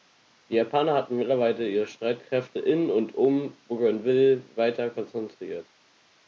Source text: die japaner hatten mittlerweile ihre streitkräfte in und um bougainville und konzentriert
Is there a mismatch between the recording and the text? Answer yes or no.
yes